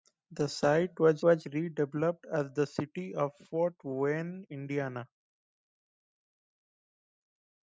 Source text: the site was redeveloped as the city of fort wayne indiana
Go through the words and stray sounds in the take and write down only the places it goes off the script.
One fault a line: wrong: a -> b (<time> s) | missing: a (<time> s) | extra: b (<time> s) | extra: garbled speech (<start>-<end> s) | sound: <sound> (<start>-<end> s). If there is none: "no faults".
extra: was (1.2 s)